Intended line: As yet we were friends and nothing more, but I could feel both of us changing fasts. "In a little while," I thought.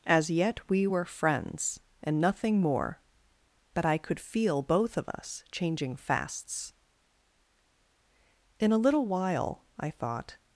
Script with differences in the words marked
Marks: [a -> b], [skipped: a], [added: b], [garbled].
As yet we were friends and nothing more, but I could feel both of us changing fasts. "In a little while," I thought.